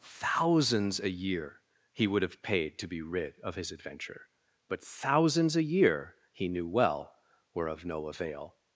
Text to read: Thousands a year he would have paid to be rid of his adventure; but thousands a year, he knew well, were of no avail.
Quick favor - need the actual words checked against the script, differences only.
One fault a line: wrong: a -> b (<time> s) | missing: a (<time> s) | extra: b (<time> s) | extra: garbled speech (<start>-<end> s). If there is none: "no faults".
no faults